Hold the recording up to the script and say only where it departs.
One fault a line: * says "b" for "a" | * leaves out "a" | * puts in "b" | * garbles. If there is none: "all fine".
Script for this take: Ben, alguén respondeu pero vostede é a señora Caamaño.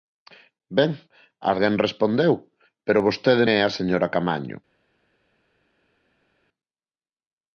all fine